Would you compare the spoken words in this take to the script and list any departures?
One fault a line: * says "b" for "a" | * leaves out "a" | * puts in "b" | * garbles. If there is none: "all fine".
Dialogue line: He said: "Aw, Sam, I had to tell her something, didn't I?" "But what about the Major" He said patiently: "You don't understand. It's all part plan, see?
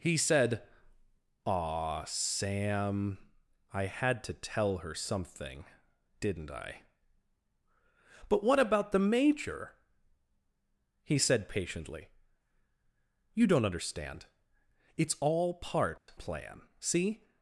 all fine